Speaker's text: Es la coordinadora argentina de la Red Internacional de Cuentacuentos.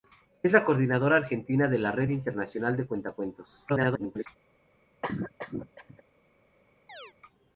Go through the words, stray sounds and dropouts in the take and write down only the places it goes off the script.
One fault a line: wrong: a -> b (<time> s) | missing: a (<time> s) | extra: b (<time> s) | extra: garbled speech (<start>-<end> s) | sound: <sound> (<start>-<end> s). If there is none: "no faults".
extra: garbled speech (3.7-4.3 s)
sound: cough (5.0-6.0 s)
sound: chirp (6.9-7.1 s)